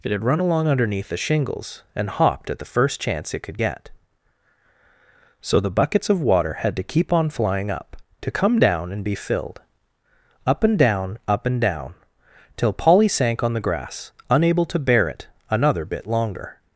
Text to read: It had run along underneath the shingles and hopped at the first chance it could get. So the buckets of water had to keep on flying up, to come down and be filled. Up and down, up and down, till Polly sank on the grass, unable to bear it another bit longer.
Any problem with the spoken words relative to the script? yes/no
no